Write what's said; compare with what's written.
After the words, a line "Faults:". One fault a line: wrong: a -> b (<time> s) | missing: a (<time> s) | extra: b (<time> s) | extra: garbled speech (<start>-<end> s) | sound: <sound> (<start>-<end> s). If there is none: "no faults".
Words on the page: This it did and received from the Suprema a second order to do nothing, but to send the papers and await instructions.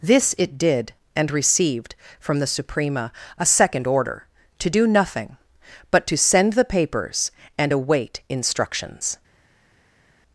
This it did and received from the Suprema a second order to do nothing, but to send the papers and await instructions.
Faults:
no faults